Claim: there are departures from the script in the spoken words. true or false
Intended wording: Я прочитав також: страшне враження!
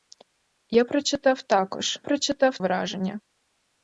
true